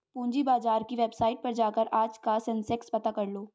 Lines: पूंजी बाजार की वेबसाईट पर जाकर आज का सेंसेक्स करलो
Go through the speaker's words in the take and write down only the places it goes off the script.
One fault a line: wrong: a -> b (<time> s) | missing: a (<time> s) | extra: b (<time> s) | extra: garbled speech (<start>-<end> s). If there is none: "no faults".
extra: पता (2.9 s)